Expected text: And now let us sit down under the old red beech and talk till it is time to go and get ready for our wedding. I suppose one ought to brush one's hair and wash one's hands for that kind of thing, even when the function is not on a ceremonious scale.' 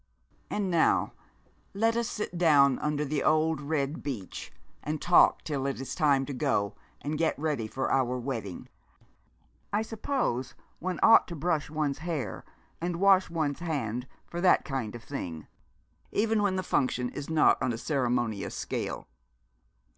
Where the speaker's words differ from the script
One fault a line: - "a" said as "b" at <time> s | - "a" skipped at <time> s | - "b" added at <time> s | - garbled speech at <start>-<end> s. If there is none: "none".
none